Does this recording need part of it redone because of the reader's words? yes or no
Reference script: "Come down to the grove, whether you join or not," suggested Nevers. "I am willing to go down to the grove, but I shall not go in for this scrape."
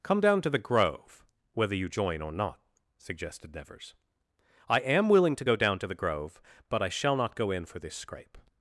no